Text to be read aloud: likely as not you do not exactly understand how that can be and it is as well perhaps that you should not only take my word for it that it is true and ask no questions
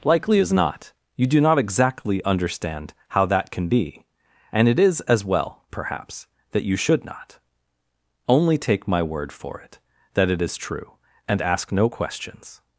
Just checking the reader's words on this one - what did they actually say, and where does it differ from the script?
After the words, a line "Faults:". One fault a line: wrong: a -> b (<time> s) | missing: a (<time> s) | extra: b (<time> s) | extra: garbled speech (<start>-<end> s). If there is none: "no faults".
likely as not you do not exactly understand how that can be and it is as well perhaps that you should not only take my word for it that it is true and ask no questions
Faults:
no faults